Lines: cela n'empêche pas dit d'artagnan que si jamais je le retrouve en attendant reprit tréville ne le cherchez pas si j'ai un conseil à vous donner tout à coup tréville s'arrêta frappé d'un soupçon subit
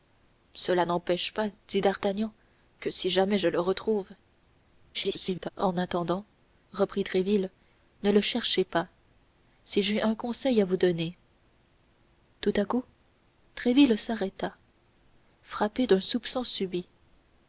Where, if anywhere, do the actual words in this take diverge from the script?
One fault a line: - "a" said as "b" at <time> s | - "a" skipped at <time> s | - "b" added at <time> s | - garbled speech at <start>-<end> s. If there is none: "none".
- garbled speech at 4.9-5.5 s